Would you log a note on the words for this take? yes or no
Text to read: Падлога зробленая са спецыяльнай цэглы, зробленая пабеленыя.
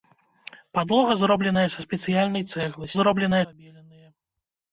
no